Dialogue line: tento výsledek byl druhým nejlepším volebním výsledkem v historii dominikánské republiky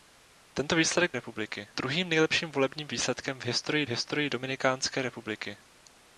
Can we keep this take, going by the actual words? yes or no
no